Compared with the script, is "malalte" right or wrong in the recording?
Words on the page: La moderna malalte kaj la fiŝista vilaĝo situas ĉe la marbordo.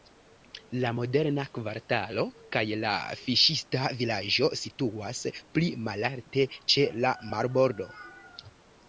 wrong